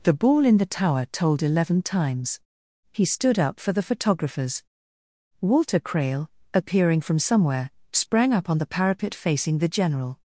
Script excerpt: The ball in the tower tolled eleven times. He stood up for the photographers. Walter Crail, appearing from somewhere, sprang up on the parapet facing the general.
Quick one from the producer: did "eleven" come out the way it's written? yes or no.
yes